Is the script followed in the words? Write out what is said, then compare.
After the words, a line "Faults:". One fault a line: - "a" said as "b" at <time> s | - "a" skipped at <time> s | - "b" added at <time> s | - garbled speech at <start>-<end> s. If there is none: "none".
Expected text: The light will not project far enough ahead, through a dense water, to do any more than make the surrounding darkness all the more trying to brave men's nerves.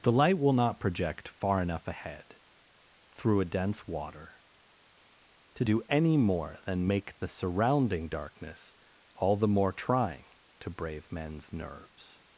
The light will not project far enough ahead, through a dense water, to do any more than make the surrounding darkness all the more trying to brave men's nerves.
Faults:
none